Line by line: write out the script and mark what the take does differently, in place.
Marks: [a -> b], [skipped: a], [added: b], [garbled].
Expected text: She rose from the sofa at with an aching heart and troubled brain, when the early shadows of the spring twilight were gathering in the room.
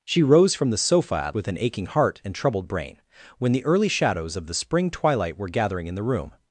She rose from the sofa at with an aching heart and troubled brain, when the early shadows of the spring twilight were gathering in the room.